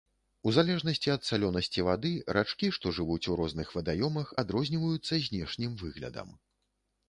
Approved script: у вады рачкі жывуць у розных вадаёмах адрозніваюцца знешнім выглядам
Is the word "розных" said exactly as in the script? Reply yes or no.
yes